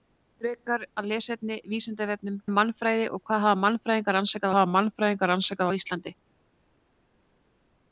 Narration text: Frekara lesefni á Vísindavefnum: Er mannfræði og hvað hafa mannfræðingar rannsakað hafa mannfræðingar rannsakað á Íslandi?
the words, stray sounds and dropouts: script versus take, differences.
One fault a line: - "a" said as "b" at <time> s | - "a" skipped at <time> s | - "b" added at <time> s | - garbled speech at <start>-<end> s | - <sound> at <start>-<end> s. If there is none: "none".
none